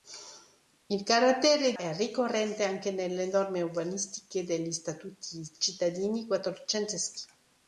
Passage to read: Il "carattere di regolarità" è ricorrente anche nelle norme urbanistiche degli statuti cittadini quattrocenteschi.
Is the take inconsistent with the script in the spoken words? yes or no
yes